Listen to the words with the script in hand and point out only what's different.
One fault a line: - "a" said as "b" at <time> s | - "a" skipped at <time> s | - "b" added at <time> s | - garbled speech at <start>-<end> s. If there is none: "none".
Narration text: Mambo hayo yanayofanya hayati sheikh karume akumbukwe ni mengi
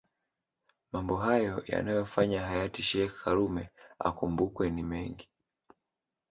none